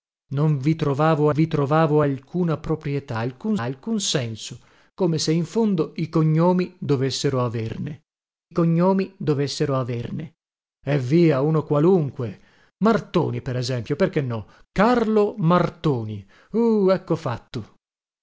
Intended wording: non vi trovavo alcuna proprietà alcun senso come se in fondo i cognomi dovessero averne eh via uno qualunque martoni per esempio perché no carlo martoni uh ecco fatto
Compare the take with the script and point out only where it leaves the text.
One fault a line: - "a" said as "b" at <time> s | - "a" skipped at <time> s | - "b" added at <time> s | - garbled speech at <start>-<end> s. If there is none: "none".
- "vi trovavo" added at 1.3 s
- "alcun" added at 3.6 s
- "cognomi dovessero averne" added at 8.5 s